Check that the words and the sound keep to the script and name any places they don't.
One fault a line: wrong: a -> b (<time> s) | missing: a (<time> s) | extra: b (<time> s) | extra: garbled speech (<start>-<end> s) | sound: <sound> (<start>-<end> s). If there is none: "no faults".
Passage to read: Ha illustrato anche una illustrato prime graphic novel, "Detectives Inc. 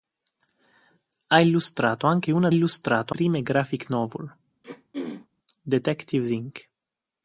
sound: throat clearing (4.6-5.3 s)